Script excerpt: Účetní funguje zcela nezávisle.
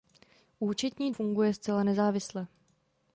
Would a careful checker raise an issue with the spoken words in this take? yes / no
no